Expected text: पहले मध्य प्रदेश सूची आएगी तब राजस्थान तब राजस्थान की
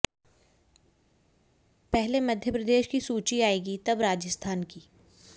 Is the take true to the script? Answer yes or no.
no